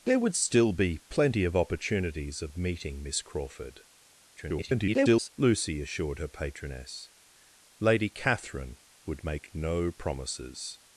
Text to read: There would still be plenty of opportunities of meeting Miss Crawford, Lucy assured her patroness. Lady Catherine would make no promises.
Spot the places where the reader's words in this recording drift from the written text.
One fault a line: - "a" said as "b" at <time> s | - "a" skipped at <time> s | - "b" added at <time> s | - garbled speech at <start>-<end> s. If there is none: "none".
- garbled speech at 4.4-5.3 s